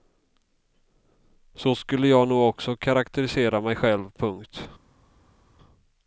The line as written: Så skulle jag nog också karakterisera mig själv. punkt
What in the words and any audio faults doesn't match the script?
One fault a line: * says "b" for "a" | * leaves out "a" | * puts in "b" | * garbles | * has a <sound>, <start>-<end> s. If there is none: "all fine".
all fine